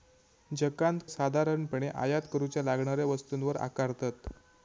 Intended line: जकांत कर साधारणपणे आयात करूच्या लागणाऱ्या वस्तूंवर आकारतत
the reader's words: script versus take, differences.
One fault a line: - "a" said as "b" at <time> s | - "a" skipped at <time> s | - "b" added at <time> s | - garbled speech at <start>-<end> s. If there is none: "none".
- "कर" skipped at 1.0 s